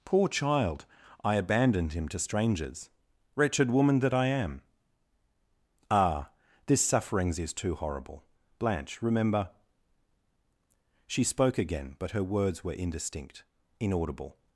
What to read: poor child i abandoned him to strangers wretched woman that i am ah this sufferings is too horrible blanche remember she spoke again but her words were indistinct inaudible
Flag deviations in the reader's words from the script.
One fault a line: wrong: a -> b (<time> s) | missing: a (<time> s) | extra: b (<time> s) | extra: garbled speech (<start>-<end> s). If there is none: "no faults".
no faults